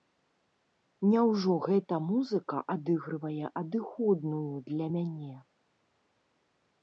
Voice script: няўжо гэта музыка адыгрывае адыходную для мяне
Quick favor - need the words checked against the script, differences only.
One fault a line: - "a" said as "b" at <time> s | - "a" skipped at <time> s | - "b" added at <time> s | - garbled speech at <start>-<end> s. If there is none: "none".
none